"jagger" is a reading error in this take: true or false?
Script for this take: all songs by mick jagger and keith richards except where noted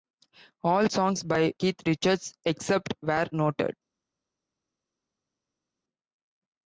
true